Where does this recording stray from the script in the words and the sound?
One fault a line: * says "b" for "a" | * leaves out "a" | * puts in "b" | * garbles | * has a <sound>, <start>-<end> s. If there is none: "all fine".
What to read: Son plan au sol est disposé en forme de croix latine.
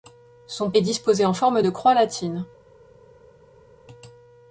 * leaves out "plan au sol"